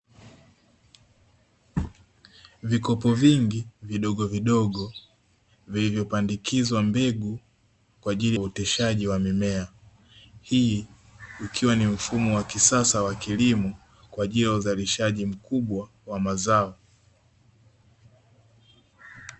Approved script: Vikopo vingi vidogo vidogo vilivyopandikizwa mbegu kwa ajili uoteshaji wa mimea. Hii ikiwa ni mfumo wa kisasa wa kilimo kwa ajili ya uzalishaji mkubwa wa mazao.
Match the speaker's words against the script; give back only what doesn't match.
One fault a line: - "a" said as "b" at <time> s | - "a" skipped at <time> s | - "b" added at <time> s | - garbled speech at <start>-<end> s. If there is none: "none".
none